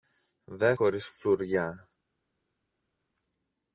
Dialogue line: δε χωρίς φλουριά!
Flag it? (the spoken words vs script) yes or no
no